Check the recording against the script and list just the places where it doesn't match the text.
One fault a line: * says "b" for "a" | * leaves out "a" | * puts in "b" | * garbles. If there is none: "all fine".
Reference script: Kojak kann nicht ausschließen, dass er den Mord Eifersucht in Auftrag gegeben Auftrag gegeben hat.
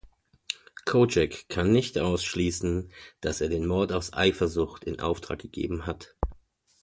* puts in "aus"
* leaves out "Auftrag gegeben"